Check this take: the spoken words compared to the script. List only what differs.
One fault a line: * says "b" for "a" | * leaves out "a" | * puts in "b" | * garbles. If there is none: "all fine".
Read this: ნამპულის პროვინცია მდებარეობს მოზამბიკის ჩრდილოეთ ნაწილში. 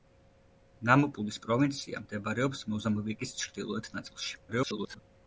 * garbles